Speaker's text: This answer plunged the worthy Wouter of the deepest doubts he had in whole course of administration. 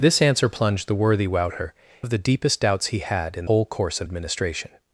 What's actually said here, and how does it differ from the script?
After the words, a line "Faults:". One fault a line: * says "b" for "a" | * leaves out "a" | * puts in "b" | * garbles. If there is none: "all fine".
This answer plunged the worthy Wouter of the deepest doubts he had in whole course of administration.
Faults:
all fine